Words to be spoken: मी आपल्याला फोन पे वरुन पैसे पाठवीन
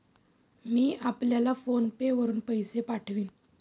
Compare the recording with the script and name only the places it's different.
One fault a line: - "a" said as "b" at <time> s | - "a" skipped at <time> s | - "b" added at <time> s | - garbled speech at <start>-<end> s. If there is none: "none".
none